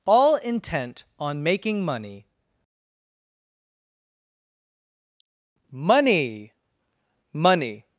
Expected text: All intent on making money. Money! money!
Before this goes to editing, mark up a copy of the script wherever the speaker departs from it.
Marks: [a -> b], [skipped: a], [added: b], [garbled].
All intent on making money. Money! money!